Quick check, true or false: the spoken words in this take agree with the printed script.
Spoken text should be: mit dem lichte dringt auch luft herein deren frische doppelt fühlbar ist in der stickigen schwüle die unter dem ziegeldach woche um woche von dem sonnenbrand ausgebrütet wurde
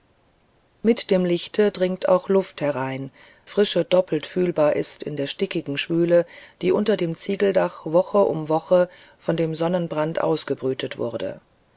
false